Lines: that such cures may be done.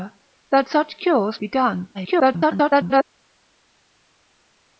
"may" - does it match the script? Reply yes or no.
no